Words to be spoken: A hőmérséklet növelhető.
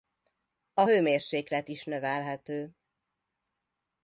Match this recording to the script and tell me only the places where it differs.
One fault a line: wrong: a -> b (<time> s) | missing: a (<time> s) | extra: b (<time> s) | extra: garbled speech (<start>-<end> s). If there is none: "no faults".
extra: is (1.7 s)